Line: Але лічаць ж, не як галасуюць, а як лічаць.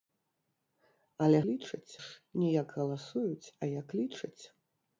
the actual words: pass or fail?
pass